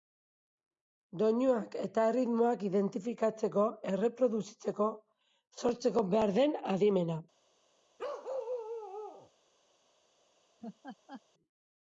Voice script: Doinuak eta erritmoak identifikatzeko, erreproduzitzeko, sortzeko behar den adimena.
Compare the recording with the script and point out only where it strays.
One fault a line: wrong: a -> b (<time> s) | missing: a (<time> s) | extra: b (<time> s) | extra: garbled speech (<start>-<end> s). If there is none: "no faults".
no faults